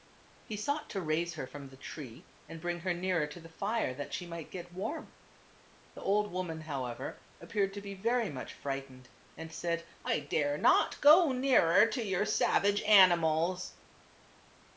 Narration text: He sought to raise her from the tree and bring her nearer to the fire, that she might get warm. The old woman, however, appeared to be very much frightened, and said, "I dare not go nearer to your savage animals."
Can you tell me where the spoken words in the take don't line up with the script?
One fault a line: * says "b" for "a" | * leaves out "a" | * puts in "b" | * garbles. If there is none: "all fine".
all fine